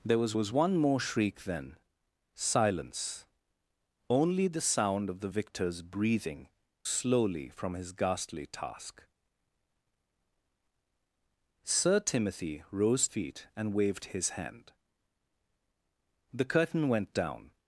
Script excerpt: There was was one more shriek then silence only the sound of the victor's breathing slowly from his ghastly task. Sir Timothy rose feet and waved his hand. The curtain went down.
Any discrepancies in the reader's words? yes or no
no